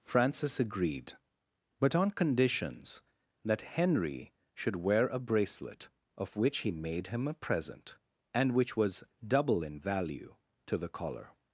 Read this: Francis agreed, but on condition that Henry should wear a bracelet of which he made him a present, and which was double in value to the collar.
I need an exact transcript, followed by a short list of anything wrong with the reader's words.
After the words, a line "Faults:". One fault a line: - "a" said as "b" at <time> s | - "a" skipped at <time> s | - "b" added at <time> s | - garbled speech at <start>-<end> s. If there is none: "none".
Francis agreed, but on conditions that Henry should wear a bracelet of which he made him a present, and which was double in value to the collar.
Faults:
- "condition" said as "conditions" at 2.1 s